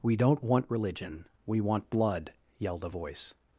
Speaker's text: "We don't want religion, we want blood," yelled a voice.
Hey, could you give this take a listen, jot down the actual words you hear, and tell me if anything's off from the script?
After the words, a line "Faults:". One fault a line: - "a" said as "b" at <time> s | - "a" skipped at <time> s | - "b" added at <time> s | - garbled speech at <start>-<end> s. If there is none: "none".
"We don't want religion, we want blood," yelled a voice.
Faults:
none